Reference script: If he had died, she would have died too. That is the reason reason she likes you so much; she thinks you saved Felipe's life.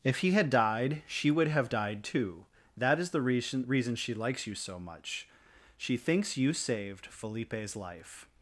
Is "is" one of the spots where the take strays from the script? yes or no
no